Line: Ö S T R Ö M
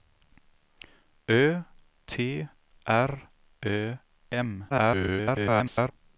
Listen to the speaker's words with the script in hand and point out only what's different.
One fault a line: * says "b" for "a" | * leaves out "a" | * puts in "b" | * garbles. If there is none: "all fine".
* leaves out "S"
* garbles